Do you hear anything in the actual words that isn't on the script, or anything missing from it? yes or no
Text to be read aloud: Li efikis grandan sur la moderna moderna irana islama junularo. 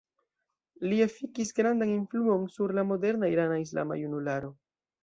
yes